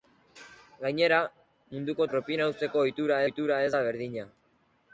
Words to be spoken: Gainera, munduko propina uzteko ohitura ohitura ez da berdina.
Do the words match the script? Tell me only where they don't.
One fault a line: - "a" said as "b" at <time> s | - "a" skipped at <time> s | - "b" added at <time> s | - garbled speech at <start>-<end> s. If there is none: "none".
none